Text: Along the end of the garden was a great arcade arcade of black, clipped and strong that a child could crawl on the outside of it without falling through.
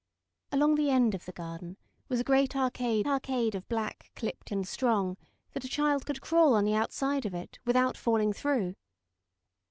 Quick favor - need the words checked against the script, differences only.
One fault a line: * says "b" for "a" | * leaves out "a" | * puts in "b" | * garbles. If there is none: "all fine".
all fine